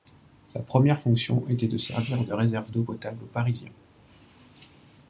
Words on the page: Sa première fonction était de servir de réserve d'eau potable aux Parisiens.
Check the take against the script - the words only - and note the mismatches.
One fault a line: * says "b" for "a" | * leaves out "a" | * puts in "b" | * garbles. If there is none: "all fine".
all fine